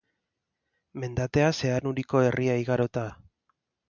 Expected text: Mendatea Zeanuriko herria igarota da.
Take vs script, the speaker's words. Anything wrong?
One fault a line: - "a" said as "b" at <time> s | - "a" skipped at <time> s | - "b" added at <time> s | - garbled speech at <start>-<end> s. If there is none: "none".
none